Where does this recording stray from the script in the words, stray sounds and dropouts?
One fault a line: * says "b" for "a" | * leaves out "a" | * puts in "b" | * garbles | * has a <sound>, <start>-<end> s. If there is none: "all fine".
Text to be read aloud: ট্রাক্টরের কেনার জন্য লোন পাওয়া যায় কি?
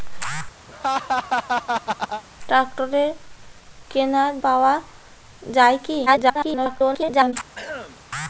* has a laugh, 0.7-2.2 s
* leaves out "জন্য লোন"
* garbles
* has a throat clearing, 7.5-8.0 s